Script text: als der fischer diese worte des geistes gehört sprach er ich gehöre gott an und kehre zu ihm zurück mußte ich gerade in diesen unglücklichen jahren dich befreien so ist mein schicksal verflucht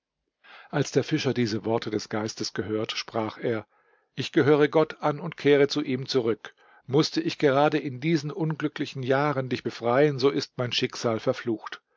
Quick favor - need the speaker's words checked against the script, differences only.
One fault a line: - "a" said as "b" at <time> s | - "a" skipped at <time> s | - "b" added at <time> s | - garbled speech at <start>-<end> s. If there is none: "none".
none